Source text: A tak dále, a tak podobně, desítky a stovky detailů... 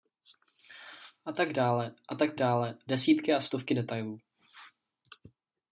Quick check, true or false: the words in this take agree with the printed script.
false